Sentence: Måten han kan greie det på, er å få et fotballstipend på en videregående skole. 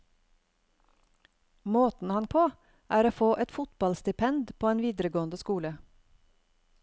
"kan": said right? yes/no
no